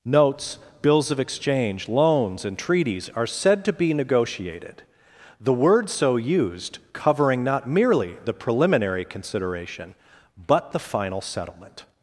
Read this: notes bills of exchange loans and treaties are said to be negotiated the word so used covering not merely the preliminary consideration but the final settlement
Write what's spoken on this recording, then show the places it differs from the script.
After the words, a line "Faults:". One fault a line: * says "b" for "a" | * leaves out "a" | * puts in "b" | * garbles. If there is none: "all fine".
notes bills of exchange loans and treaties are said to be negotiated the word so used covering not merely the preliminary consideration but the final settlement
Faults:
all fine